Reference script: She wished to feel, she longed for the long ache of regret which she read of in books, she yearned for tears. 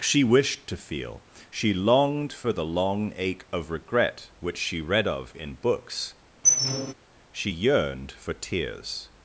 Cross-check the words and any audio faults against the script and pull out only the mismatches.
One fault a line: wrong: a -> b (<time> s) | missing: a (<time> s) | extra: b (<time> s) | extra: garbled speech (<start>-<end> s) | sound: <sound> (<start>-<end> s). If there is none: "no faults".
sound: squeak (6.4-6.9 s)